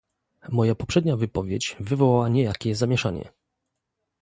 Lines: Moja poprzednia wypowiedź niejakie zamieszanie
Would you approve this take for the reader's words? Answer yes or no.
no